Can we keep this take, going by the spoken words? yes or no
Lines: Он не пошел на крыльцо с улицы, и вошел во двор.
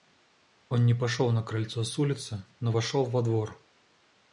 no